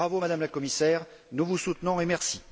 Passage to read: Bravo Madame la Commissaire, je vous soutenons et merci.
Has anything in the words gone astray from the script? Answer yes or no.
yes